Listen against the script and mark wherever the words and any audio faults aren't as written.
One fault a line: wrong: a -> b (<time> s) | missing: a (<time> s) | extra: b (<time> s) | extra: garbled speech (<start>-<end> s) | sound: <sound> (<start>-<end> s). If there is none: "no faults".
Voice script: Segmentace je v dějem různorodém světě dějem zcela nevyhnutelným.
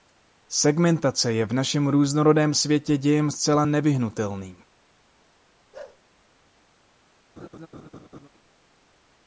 wrong: dějem -> našem (1.5 s)
sound: bark (5.7-6.0 s)
sound: laugh (7.4-8.3 s)